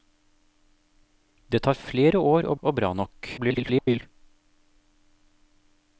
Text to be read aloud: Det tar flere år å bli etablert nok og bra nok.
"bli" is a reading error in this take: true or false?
true